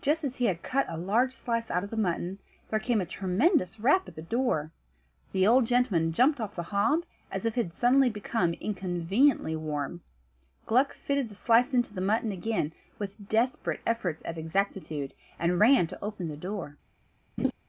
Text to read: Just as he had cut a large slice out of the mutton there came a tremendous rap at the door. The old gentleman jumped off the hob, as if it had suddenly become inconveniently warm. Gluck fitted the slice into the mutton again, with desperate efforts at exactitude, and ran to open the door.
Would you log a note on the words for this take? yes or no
no